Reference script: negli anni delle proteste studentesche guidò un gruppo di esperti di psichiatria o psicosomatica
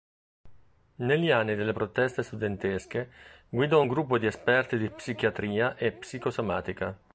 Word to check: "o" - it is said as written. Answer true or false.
false